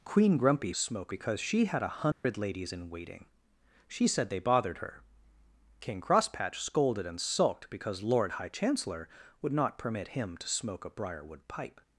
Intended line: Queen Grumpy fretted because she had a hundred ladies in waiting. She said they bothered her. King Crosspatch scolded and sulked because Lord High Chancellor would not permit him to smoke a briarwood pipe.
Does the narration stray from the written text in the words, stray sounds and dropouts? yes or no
yes